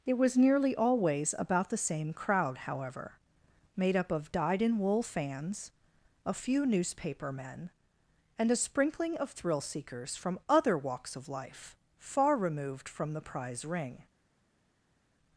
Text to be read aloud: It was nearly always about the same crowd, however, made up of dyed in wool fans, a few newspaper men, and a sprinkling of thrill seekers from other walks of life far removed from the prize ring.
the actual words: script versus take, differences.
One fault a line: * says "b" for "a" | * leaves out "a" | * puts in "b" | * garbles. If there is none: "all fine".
all fine